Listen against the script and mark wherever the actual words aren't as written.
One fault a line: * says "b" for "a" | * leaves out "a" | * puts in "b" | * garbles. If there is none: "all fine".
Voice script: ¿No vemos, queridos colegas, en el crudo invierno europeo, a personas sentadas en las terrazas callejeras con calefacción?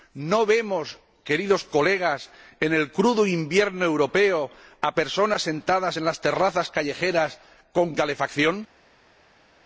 all fine